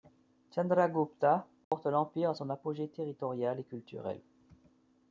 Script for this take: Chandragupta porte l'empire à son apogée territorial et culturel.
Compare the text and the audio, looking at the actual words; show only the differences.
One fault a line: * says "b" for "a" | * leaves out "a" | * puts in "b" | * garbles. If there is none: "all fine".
all fine